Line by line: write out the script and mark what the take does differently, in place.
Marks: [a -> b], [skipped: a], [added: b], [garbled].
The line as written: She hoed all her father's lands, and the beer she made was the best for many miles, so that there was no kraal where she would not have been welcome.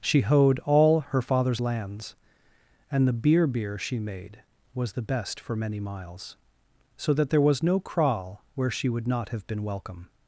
She hoed all her father's lands, and the beer [added: beer] she made was the best for many miles, so that there was no kraal where she would not have been welcome.